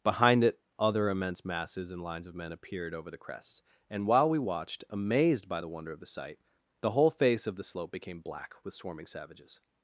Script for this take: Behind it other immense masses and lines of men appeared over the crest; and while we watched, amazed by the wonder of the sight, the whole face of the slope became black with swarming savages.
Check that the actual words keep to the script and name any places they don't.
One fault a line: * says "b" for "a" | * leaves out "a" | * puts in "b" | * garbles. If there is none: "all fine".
all fine